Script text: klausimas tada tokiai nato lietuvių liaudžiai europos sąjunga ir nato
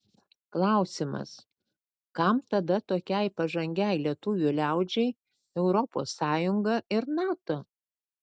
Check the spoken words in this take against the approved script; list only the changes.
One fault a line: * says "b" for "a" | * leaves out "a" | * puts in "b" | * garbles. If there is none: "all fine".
* puts in "kam"
* says "pažangiai" for "nato"